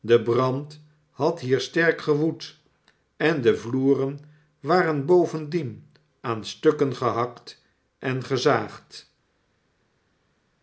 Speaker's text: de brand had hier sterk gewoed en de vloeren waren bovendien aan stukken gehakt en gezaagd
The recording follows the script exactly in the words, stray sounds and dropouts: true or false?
true